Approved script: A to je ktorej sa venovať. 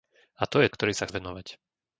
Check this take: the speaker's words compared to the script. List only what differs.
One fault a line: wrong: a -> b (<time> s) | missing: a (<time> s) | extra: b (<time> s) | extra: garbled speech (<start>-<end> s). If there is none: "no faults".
no faults